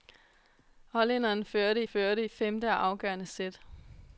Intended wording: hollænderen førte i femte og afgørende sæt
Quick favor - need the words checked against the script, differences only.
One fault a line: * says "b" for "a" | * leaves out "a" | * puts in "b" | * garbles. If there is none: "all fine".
* puts in "førte"